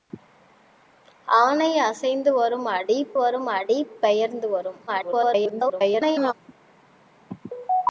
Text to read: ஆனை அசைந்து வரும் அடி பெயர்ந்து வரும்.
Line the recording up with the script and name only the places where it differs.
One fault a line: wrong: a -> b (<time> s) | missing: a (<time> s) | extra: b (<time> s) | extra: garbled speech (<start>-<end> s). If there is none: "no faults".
extra: வரும் அடி (3.2 s)
extra: garbled speech (4.9-6.3 s)